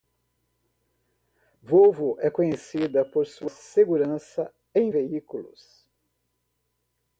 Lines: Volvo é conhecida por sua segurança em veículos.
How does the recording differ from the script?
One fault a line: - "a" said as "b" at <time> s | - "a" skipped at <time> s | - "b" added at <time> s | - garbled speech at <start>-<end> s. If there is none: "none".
none